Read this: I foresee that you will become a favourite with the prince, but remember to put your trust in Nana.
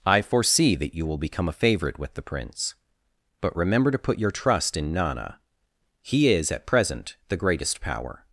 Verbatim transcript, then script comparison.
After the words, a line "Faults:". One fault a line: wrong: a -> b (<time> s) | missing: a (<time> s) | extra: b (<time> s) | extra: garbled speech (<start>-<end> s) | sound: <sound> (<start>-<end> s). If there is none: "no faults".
I foresee that you will become a favourite with the prince, but remember to put your trust in Nana. He is, at present, the greatest power
Faults:
extra: He is at present the greatest power (6.0 s)